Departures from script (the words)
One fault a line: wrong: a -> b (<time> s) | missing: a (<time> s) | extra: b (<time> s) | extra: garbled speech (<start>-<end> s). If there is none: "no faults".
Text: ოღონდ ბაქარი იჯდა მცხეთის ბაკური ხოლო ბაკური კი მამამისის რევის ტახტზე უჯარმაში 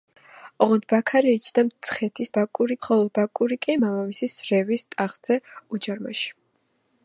no faults